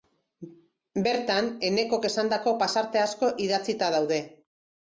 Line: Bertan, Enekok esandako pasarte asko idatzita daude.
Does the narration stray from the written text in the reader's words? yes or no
no